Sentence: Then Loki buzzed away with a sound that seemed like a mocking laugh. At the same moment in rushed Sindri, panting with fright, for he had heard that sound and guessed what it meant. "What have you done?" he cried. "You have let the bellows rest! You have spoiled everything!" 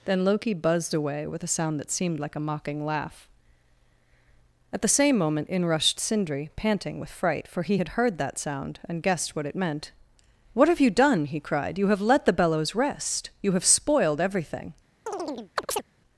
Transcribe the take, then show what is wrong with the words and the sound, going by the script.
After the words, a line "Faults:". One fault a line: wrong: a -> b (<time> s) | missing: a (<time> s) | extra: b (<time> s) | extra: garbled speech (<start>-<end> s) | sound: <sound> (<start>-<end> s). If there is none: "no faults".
Then Loki buzzed away with a sound that seemed like a mocking laugh. At the same moment in rushed Sindri, panting with fright, for he had heard that sound and guessed what it meant. "What have you done?" he cried. "You have let the bellows rest! You have spoiled everything!"
Faults:
sound: chirp (15.1-15.8 s)